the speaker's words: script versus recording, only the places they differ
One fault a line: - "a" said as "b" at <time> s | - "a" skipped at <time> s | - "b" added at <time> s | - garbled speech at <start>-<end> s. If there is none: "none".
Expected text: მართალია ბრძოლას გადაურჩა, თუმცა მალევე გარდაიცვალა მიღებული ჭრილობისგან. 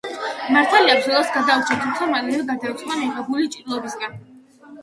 none